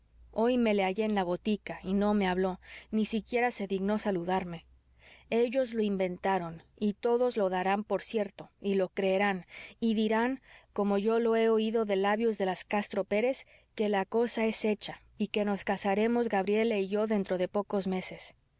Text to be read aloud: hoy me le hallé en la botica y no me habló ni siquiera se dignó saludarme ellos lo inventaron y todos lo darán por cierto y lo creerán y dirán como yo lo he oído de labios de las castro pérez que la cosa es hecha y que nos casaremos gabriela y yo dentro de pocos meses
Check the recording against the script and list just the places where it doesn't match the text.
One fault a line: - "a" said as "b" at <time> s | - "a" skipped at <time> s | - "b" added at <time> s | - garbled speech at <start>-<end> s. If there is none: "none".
none